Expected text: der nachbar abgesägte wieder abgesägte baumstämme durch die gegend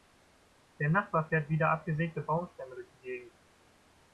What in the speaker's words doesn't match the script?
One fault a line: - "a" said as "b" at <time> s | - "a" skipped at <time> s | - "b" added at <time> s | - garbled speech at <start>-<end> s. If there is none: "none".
- "abgesägte" said as "fährt" at 1.3 s